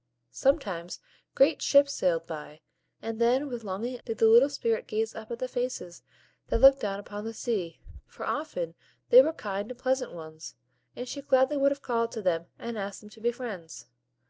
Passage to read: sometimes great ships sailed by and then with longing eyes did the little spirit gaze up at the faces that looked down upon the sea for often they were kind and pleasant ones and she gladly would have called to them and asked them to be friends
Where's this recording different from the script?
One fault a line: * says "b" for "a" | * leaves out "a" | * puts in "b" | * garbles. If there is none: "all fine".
* leaves out "eyes"